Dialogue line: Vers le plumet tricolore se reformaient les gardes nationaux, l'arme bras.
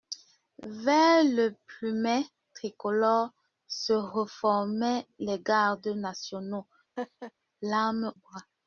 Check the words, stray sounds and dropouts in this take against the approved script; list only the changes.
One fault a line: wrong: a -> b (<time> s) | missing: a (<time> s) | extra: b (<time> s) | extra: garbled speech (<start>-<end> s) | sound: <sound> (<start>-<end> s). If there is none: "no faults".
sound: laugh (7.0-7.3 s)